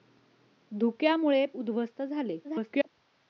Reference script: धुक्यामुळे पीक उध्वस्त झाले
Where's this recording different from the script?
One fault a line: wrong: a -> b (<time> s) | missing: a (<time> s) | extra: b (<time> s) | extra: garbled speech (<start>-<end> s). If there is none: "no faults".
missing: पीक (1.4 s)
extra: garbled speech (2.4-2.9 s)